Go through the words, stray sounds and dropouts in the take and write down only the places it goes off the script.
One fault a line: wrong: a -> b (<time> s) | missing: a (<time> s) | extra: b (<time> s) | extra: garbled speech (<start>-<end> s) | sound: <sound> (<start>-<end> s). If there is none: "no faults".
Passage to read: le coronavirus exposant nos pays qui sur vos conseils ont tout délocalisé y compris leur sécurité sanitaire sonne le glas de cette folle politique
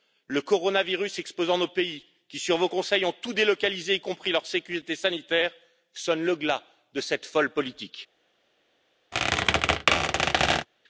sound: squeak (9.1-10.7 s)